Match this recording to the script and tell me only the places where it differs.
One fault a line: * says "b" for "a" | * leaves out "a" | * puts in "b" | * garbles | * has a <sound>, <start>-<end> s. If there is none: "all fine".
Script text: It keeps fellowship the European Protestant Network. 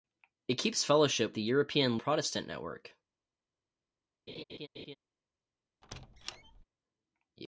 * has a laugh, 4.3-5.0 s
* has a squeak, 5.8-6.6 s